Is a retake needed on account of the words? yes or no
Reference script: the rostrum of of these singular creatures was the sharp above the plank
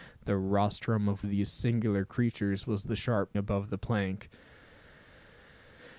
no